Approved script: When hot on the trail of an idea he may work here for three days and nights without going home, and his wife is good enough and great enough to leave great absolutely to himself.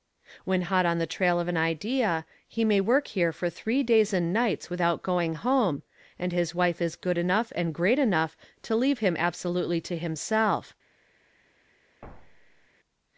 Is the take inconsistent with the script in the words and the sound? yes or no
yes